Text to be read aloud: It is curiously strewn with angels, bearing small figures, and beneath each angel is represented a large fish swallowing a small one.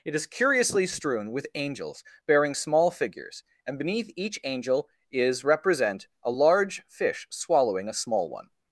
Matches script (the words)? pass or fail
fail